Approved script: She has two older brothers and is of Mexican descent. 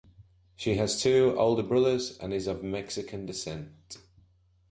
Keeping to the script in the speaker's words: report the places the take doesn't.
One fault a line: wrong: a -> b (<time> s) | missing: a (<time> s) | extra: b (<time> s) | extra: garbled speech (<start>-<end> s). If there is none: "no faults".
no faults